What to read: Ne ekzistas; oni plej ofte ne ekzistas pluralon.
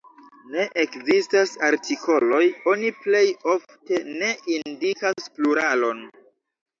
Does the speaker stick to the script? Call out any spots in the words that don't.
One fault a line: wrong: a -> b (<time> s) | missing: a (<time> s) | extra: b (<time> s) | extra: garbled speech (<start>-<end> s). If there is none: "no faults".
extra: artikoloj (1.7 s)
wrong: ekzistas -> indikas (4.6 s)